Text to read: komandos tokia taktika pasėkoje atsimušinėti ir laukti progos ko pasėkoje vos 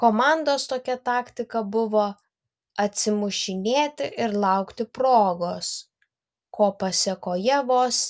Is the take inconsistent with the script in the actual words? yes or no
yes